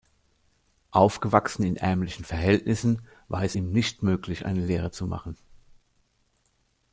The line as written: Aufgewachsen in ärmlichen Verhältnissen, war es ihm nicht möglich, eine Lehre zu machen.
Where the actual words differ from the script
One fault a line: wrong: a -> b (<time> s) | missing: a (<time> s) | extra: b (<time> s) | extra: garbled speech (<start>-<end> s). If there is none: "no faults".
no faults